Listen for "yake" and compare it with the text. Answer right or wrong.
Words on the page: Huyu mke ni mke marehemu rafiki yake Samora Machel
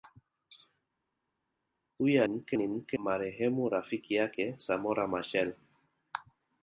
right